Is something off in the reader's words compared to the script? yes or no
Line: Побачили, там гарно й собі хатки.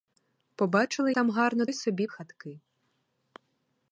no